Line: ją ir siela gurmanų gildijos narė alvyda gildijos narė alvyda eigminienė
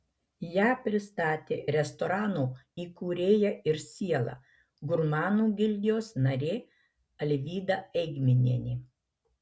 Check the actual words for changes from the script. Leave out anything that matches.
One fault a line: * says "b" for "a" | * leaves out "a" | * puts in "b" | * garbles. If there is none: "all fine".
* puts in "pristatė restorano įkūrėja"
* leaves out "gildijos narė alvyda"